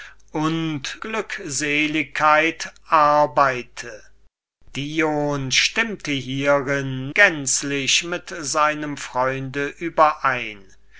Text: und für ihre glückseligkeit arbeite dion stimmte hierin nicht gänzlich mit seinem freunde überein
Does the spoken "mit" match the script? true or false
true